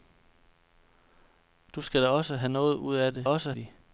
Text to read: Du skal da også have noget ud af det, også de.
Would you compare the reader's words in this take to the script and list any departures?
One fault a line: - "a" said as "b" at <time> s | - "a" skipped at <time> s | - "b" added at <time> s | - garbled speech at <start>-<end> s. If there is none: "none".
none